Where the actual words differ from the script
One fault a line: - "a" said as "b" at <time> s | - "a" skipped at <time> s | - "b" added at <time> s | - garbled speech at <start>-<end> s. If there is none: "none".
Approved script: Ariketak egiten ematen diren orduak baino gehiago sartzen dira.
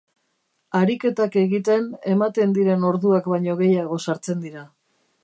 none